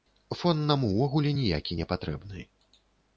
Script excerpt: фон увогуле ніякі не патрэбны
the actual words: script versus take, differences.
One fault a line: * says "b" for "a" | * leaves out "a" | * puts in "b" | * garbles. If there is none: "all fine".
* puts in "нам"